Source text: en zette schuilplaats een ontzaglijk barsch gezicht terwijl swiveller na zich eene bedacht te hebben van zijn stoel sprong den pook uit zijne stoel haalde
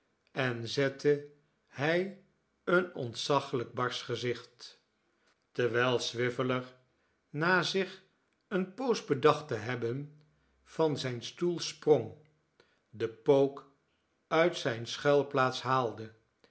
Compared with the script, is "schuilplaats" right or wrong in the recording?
wrong